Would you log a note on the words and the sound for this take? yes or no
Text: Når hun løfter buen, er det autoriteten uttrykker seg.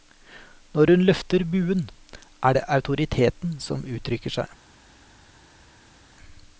yes